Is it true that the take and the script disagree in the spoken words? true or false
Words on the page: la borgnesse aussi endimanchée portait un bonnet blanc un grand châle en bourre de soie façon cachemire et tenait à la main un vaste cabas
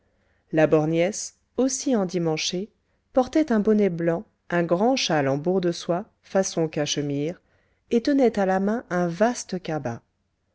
false